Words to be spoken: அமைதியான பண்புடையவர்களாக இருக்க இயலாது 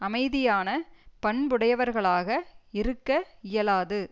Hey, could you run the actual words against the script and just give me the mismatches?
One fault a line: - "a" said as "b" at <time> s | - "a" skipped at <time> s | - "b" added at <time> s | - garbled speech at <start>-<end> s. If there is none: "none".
none